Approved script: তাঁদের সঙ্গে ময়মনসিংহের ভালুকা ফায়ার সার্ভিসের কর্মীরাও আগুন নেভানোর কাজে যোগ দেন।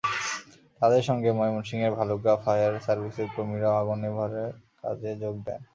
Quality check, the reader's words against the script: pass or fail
pass